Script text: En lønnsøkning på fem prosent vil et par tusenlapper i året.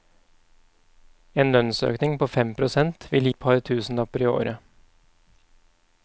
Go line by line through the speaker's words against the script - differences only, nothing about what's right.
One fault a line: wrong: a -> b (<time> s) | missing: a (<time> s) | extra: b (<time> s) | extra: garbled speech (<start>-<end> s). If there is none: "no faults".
no faults